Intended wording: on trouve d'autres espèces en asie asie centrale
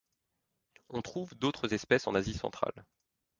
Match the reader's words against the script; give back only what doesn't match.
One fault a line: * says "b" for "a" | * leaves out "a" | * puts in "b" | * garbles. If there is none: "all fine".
* leaves out "asie"